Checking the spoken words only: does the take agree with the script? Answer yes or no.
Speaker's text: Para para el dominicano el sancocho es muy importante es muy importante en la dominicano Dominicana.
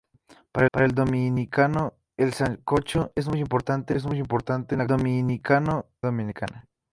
yes